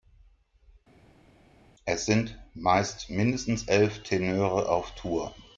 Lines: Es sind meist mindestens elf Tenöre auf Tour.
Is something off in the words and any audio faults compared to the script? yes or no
no